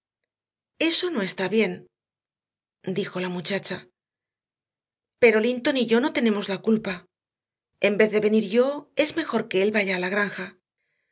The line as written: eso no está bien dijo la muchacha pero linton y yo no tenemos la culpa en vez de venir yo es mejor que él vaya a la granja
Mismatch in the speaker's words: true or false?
false